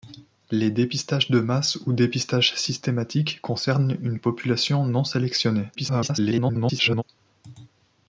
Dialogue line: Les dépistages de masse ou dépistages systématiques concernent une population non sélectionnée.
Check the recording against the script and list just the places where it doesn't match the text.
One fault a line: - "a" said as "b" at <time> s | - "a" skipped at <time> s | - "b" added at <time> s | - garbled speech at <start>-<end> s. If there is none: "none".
- garbled speech at 5.7-7.0 s